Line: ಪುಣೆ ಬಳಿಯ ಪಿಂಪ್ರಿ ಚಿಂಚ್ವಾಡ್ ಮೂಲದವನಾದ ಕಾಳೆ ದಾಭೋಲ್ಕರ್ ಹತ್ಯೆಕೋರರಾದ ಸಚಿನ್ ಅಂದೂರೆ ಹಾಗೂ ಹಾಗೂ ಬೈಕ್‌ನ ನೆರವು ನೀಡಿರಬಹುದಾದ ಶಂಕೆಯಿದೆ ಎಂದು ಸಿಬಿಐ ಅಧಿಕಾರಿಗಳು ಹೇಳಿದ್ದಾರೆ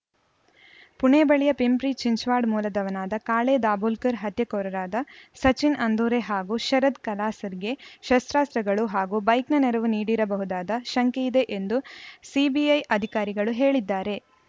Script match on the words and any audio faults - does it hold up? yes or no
no